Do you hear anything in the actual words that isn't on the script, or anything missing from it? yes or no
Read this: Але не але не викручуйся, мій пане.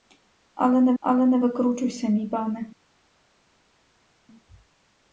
no